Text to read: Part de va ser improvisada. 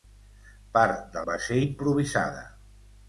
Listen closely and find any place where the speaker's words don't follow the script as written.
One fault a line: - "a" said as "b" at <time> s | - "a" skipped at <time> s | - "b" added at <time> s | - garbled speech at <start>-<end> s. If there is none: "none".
none